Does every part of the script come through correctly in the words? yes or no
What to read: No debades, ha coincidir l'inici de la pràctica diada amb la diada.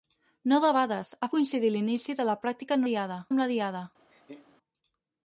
yes